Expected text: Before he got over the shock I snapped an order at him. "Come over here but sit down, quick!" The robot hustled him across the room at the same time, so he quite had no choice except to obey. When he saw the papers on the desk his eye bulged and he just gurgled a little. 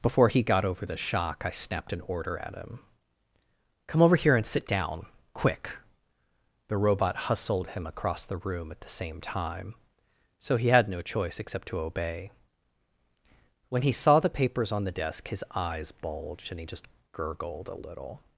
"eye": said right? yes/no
no